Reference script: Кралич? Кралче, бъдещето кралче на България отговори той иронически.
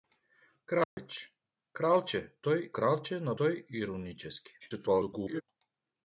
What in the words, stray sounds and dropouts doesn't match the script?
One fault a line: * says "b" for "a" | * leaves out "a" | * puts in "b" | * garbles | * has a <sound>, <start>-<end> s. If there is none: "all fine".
* has a dropout, 0.8-1.0 s
* says "той" for "бъдещето"
* leaves out "България отговори"
* garbles